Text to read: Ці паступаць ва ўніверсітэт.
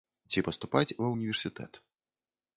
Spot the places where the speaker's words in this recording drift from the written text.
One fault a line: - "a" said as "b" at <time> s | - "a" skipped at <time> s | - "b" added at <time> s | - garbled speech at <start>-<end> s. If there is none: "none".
none